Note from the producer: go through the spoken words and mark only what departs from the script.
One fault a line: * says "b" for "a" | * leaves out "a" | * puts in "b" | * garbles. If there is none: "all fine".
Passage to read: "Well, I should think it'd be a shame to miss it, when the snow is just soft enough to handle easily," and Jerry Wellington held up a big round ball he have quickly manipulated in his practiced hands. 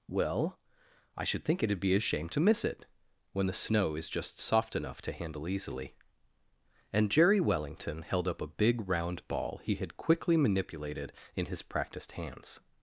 * says "had" for "have"